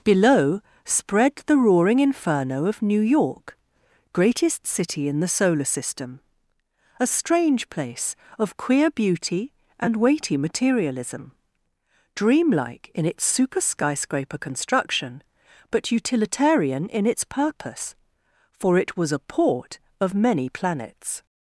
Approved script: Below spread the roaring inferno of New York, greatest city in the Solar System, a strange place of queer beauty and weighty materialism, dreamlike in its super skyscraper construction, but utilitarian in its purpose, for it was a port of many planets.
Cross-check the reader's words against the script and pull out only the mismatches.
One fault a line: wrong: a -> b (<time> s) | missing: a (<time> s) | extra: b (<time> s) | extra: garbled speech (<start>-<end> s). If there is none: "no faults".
no faults